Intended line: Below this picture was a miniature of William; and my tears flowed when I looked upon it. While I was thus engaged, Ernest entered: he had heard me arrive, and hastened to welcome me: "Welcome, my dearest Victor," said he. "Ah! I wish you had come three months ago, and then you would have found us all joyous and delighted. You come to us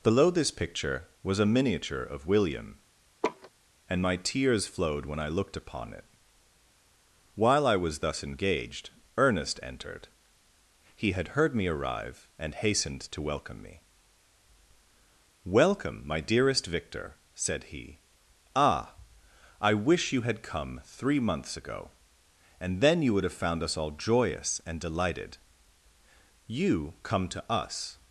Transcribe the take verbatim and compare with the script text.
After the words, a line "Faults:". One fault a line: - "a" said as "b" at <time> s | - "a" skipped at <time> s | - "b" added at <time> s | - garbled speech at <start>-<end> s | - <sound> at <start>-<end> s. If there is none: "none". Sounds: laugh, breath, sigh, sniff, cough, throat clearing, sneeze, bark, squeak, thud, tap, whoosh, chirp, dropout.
Below this picture was a miniature of William; and my tears flowed when I looked upon it. While I was thus engaged, Ernest entered: he had heard me arrive, and hastened to welcome me: "Welcome, my dearest Victor," said he. "Ah! I wish you had come three months ago, and then you would have found us all joyous and delighted. You come to us
Faults:
- laugh at 3.2-3.5 s